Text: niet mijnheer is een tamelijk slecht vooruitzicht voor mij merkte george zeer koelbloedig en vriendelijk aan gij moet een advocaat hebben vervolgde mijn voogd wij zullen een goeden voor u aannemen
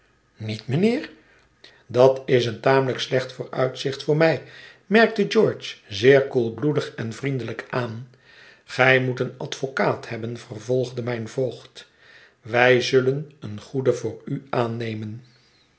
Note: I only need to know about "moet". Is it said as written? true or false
true